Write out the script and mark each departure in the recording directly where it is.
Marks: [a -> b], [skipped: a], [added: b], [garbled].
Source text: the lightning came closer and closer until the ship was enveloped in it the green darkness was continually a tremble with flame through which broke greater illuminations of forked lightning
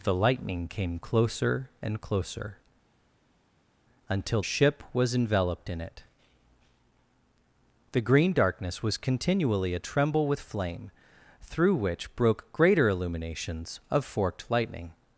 the lightning came closer and closer until [skipped: the] ship was enveloped in it the green darkness was continually a tremble with flame through which broke greater illuminations of forked lightning